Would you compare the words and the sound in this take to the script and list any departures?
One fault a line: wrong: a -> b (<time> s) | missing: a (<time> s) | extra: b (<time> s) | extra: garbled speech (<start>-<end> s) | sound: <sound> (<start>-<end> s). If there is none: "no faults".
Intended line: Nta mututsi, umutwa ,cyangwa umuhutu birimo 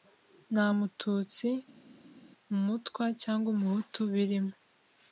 no faults